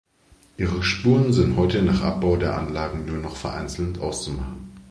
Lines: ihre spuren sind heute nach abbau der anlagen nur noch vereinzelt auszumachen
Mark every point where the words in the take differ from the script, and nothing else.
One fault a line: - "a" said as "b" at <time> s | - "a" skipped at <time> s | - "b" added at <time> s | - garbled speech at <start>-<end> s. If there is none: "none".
none